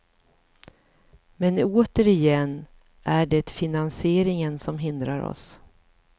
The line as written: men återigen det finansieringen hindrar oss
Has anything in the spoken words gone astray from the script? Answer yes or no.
yes